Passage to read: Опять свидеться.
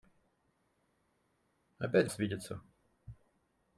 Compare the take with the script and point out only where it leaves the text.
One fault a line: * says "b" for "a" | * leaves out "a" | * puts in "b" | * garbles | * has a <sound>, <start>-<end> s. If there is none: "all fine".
all fine